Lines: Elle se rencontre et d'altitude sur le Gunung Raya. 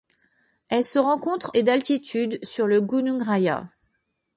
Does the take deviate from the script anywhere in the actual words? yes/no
no